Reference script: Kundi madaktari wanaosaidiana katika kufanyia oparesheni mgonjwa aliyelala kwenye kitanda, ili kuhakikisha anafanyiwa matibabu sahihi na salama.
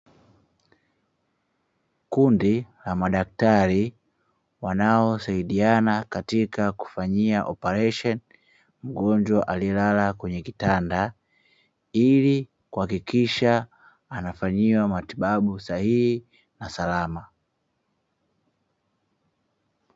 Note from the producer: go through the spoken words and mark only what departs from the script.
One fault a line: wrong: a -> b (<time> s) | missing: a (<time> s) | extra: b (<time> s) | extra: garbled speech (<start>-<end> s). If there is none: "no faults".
extra: la (2.9 s)